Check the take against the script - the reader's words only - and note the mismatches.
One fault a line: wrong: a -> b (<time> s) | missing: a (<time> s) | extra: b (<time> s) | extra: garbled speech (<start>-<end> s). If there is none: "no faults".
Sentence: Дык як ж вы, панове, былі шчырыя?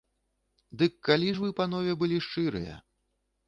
wrong: як -> калі (1.1 s)